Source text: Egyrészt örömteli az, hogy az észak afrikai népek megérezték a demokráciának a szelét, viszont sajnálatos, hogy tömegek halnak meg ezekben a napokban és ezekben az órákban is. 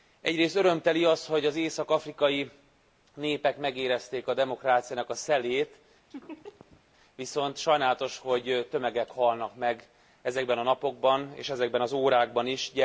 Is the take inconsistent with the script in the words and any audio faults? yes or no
yes